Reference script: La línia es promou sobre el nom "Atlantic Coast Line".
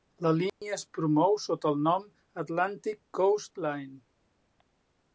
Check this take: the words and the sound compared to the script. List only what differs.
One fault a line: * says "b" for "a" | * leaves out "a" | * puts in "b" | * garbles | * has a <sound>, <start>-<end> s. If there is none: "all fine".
* has a dropout, 0.5-0.6 s
* says "sota" for "sobre"